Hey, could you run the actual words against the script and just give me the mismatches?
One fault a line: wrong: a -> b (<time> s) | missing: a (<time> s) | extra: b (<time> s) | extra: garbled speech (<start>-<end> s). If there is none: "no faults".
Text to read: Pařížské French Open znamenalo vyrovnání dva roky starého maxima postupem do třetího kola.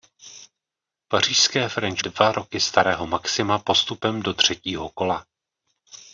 missing: Open znamenalo vyrovnání (2.0 s)